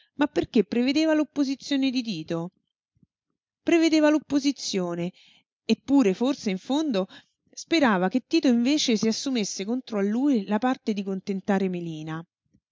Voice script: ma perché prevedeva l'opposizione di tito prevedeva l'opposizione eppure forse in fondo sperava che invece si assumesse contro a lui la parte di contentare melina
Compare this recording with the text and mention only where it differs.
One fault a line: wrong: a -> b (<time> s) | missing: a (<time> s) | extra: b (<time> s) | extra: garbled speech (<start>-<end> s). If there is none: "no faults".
extra: tito (8.2 s)